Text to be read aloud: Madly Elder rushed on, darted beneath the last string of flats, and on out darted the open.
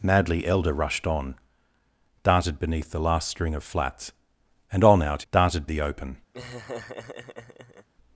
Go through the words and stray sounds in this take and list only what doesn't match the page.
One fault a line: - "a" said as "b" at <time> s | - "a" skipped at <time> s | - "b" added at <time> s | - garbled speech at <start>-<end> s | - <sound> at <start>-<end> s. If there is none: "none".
- laugh at 6.3-7.9 s